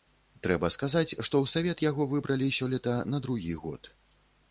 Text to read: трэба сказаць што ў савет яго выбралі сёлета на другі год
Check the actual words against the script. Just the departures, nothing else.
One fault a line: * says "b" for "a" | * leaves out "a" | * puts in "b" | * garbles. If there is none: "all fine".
all fine